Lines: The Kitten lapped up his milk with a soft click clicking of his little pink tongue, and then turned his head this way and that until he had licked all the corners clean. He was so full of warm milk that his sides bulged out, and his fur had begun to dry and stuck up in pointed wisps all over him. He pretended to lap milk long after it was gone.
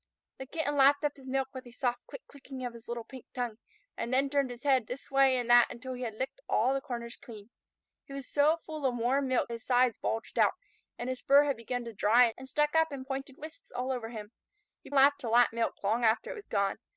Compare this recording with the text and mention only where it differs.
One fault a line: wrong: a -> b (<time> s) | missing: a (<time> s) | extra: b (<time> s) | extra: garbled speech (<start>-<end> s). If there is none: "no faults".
missing: that (9.5 s)
wrong: pretended -> lapped (14.9 s)